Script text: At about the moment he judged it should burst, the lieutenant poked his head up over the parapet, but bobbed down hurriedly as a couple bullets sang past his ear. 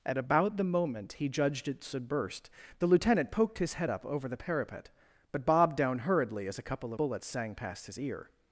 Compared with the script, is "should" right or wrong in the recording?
right